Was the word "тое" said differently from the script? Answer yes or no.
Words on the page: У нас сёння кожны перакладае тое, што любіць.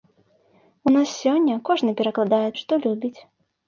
yes